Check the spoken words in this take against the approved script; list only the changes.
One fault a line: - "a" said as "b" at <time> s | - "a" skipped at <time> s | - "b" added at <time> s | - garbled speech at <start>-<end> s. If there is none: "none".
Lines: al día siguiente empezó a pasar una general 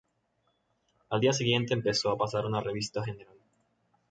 - "revista" added at 2.6 s